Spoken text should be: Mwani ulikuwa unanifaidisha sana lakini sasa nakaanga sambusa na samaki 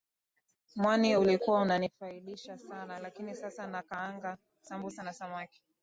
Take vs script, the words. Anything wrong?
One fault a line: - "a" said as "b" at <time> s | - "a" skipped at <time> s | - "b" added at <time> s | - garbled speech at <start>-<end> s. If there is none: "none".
none